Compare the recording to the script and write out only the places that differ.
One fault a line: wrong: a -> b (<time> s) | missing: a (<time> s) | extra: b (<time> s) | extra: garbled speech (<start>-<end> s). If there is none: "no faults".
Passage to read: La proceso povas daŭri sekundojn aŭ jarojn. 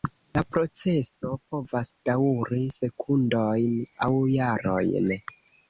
no faults